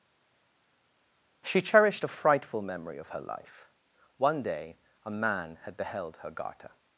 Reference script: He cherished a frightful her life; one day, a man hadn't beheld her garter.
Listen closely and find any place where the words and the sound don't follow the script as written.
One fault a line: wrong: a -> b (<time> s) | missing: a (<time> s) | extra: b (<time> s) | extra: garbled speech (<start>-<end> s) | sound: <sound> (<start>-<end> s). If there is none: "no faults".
wrong: He -> She (1.5 s)
extra: memory of (2.6 s)
wrong: hadn't -> had (5.6 s)